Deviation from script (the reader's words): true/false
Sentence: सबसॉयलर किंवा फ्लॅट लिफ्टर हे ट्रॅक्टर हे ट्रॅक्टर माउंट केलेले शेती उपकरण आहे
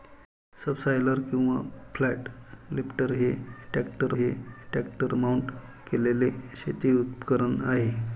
false